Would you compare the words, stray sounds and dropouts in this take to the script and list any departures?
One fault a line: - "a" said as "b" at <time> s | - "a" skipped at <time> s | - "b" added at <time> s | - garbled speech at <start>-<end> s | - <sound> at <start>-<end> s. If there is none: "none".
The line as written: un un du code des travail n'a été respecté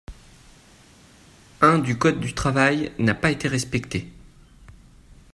- "un" skipped at 1.8 s
- "des" said as "du" at 2.2 s
- "pas" added at 3.1 s